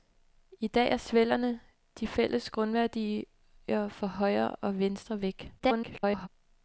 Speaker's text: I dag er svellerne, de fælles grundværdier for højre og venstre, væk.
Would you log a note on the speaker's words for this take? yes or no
yes